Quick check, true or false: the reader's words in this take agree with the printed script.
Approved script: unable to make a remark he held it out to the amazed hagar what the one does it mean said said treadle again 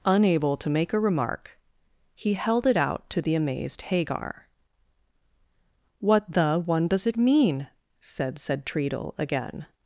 true